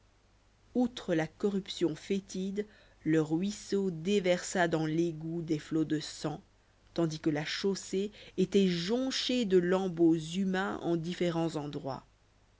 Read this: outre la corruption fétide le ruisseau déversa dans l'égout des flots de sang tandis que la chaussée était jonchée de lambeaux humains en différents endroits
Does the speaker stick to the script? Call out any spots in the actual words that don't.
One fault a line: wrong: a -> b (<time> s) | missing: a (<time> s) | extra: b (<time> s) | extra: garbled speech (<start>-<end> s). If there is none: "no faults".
no faults